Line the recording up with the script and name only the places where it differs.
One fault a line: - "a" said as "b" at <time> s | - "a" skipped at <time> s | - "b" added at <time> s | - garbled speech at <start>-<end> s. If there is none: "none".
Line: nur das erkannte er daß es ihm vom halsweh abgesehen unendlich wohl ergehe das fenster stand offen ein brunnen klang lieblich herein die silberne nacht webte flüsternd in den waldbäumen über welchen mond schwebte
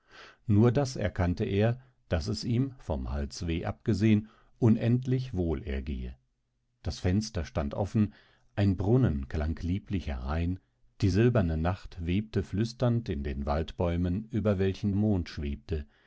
none